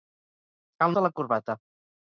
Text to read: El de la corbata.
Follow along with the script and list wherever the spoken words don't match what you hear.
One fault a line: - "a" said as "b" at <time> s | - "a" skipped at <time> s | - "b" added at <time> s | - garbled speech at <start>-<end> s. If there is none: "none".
none